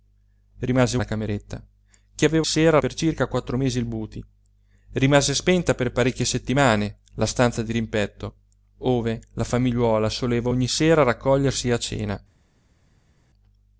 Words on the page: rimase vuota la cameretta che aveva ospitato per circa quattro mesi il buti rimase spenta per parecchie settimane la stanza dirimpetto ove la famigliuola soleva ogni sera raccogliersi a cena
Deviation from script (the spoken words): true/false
true